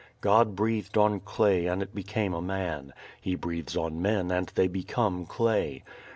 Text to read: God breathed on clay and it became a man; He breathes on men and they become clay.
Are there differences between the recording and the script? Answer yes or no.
no